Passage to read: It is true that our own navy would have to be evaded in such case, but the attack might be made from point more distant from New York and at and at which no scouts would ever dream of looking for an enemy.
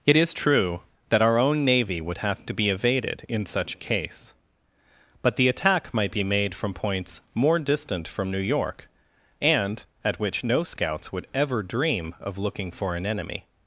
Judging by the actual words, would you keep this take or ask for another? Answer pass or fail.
fail